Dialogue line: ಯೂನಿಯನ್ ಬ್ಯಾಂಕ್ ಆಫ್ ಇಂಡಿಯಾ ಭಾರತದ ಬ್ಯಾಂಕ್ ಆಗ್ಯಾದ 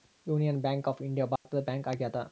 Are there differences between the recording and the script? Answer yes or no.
no